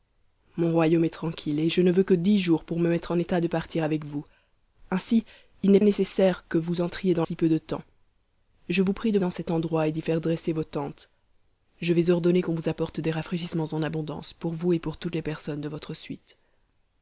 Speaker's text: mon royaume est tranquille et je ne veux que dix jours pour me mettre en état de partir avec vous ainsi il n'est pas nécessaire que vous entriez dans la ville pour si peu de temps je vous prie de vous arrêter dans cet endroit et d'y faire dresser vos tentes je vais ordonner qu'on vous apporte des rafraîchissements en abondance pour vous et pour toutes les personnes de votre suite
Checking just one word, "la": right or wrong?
wrong